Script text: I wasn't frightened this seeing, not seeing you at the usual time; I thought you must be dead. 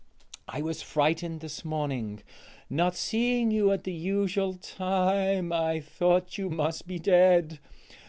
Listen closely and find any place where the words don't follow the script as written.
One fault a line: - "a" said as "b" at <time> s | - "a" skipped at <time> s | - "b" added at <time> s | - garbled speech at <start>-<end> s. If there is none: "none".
- "wasn't" said as "was" at 0.6 s
- "seeing" said as "morning" at 1.6 s